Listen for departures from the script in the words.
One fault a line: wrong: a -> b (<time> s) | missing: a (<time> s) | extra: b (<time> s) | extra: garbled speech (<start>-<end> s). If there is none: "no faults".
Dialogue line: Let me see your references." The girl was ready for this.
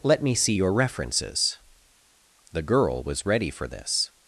no faults